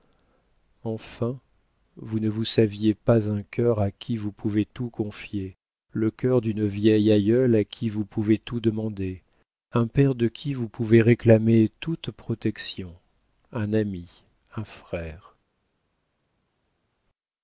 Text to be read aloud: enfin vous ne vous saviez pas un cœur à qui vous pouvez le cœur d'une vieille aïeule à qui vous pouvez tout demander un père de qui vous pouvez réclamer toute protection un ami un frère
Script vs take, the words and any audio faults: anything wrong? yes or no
yes